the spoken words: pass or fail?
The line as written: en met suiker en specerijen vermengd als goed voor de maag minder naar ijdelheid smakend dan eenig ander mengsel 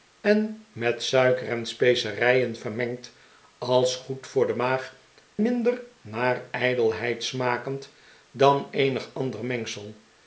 pass